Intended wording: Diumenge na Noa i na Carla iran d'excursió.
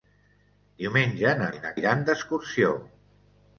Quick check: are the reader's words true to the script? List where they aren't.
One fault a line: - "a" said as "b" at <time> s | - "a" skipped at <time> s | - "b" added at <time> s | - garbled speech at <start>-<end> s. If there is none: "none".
- "Noa" skipped at 1.5 s
- "Carla" skipped at 1.7 s